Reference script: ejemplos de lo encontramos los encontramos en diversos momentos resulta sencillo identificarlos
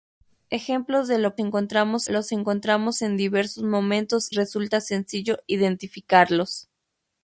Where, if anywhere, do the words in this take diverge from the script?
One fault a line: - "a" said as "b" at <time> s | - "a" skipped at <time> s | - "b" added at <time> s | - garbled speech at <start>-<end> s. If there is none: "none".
none